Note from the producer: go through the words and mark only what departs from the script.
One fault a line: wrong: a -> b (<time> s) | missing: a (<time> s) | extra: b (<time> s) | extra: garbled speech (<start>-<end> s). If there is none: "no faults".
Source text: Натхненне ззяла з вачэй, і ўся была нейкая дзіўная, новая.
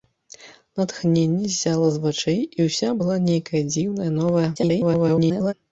extra: garbled speech (4.6-5.5 s)